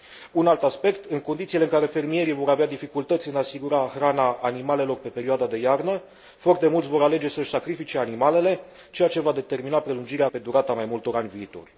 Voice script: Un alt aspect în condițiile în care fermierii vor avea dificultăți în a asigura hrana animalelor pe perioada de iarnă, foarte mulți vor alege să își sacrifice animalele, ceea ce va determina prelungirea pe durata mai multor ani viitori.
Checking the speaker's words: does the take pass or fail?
pass